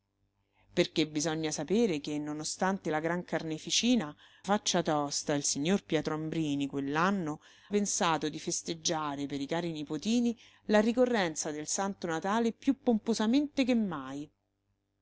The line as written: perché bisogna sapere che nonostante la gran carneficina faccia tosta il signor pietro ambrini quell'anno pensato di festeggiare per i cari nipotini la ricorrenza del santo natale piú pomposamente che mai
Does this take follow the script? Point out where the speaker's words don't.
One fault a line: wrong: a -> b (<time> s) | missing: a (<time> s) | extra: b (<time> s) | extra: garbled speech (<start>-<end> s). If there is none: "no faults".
no faults